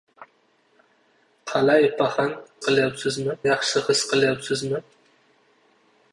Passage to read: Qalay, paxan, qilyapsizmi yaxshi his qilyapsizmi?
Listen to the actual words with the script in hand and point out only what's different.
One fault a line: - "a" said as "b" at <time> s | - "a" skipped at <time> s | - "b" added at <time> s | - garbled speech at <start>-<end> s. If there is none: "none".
none